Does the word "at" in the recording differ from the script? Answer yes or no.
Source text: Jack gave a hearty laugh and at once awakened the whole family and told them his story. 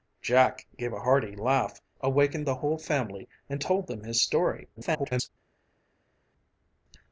yes